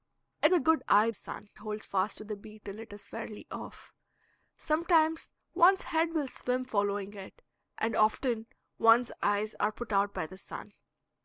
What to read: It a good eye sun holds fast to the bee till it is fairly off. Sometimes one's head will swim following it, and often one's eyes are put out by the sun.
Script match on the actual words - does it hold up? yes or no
yes